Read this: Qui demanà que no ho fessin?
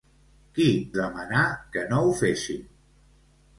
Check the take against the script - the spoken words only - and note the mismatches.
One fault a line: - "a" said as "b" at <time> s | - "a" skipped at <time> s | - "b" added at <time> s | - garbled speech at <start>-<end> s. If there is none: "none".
none